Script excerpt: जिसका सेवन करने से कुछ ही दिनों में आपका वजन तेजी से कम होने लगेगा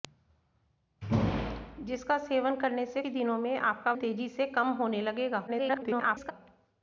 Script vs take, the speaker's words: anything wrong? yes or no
yes